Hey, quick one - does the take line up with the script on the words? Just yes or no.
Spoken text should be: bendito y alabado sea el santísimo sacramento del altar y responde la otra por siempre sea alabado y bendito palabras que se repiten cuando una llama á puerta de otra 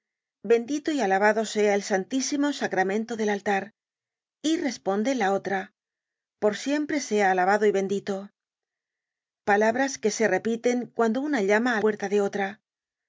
yes